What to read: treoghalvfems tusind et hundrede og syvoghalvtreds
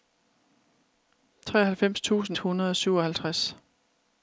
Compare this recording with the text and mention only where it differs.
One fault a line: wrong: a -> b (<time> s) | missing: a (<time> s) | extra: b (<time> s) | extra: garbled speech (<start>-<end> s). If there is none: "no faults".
missing: et (2.4 s)